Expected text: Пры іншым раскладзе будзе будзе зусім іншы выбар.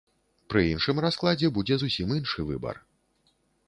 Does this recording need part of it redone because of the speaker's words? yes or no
yes